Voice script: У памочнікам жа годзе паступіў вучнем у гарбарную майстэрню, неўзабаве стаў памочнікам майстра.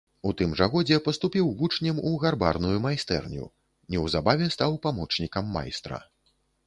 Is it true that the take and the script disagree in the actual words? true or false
true